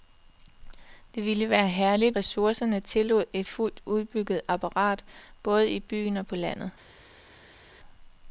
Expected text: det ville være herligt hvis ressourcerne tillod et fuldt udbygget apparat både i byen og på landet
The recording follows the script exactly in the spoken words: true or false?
false